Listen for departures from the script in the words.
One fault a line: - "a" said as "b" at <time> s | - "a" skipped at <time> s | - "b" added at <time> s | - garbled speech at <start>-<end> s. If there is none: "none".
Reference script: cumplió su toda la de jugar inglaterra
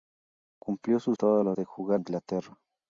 none